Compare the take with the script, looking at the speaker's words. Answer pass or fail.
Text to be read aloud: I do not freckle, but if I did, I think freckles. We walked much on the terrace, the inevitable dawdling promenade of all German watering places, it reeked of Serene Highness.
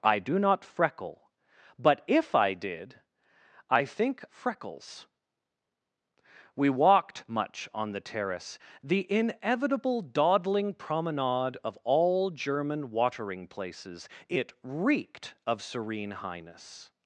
pass